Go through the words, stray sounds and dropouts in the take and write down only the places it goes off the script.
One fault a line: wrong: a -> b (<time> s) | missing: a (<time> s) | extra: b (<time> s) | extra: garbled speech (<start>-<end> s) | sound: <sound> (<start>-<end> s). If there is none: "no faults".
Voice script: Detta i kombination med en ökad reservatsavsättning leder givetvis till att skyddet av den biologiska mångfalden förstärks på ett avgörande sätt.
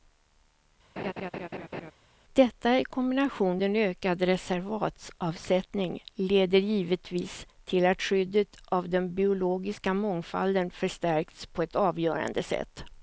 sound: laugh (1.0-1.9 s)
missing: med (3.6 s)